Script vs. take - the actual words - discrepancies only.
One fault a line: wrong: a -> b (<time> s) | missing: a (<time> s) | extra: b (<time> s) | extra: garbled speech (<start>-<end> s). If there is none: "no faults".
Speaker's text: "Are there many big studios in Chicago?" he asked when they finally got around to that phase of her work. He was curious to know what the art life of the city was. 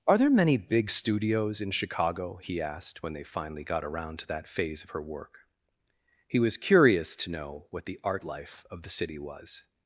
no faults